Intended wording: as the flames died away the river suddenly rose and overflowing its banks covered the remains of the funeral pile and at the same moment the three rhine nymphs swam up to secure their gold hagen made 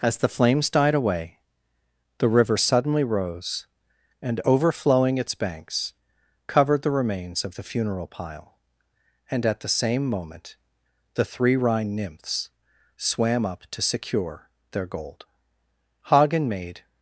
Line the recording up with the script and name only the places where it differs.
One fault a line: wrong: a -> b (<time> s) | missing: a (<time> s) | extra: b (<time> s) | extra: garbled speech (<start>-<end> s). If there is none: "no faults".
no faults